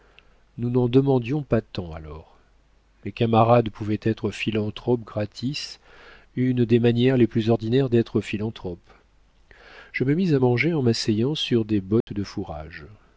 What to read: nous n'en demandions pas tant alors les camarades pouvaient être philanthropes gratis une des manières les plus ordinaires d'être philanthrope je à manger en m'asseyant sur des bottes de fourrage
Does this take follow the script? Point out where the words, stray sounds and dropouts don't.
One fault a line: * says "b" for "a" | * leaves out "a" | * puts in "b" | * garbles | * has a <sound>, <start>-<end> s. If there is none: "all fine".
* puts in "me mis"
* has a dropout, 12.0-12.1 s